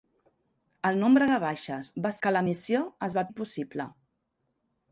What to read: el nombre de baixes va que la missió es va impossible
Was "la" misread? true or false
false